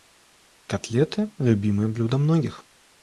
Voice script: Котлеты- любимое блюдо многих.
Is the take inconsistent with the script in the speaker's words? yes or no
no